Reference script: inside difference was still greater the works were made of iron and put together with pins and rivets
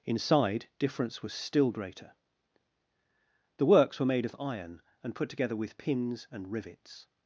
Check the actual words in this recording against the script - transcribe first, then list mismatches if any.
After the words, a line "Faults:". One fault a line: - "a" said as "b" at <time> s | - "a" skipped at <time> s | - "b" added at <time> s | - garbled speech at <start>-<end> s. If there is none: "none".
inside difference was still greater the works were made of iron and put together with pins and rivets
Faults:
none